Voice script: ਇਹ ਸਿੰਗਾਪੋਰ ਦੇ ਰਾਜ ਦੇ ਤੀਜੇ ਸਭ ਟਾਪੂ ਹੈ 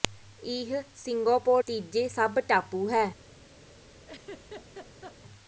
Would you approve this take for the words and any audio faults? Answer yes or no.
no